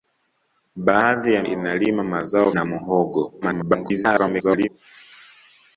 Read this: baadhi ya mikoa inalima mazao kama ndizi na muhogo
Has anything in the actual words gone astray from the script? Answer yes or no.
yes